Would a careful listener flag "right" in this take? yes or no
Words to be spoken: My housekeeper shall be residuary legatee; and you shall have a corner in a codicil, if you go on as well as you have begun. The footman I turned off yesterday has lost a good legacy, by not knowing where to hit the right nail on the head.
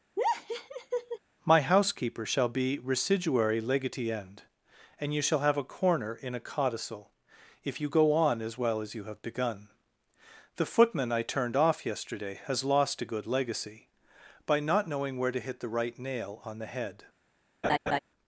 no